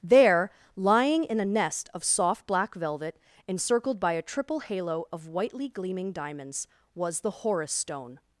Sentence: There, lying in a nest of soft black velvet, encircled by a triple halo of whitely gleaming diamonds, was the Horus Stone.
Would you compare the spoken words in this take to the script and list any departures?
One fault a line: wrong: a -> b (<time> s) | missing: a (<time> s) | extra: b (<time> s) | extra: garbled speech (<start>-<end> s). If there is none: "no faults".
no faults